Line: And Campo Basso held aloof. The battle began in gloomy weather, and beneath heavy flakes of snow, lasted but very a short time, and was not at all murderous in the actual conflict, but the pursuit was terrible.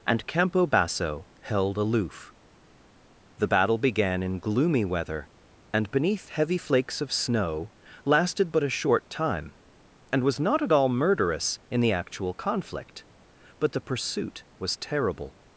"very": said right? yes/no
no